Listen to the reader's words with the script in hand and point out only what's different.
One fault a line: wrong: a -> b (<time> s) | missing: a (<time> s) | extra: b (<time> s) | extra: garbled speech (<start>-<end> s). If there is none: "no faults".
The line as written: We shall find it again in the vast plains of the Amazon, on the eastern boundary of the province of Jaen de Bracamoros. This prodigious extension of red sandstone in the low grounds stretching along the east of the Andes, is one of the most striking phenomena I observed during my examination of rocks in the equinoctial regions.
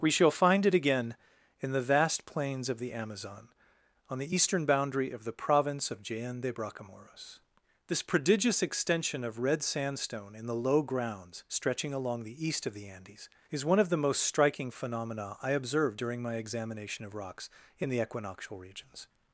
no faults